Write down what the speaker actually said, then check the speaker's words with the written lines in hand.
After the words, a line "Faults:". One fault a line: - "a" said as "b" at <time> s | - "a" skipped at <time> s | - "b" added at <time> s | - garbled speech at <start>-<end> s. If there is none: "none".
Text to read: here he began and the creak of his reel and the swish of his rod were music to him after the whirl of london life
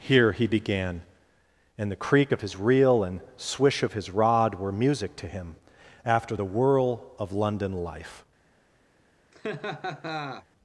here he began and the creak of his reel and swish of his rod were music to him after the whirl of london life
Faults:
- "the" skipped at 3.2 s